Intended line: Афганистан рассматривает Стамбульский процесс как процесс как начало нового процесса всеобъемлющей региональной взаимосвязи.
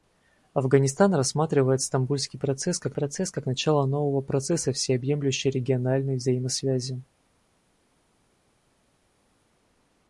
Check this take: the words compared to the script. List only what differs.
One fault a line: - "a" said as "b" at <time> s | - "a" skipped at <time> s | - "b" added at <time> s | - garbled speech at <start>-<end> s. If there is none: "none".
none